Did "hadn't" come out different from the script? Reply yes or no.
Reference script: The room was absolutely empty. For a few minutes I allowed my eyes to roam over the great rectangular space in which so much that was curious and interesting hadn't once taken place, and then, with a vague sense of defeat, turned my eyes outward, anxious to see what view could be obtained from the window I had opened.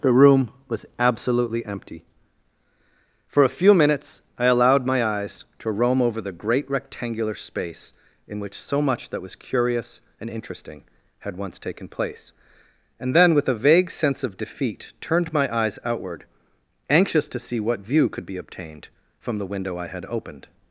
yes